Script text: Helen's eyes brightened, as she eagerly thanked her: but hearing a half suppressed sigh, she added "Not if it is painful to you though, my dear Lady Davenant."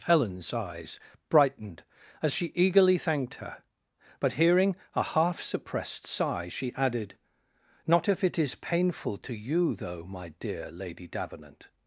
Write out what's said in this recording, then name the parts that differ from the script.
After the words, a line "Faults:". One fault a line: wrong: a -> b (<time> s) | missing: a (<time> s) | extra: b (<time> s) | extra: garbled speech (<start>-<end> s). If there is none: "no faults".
Helen's eyes brightened, as she eagerly thanked her: but hearing a half suppressed sigh, she added "Not if it is painful to you though, my dear Lady Davenant."
Faults:
no faults